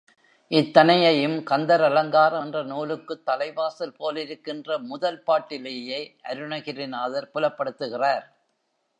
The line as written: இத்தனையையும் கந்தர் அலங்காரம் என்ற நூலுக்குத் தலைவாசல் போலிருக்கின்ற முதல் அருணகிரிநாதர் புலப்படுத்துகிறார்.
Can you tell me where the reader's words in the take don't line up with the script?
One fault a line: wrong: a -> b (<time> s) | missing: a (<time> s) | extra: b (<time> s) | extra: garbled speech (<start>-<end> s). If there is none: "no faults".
extra: பாட்டிலேயே (5.2 s)